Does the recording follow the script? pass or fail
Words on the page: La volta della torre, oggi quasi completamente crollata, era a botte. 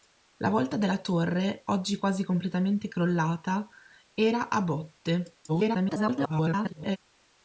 fail